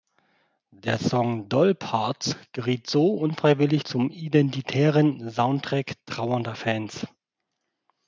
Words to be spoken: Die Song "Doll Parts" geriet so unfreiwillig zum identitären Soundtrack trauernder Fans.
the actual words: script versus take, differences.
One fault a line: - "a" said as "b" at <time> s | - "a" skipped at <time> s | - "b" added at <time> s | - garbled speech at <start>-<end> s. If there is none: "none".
- "Die" said as "Der" at 0.7 s